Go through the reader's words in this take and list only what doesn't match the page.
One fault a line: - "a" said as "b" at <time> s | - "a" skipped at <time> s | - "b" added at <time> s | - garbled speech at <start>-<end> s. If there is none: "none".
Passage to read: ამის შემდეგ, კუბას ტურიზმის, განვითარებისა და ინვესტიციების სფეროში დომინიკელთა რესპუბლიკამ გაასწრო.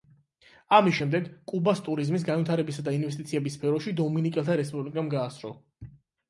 none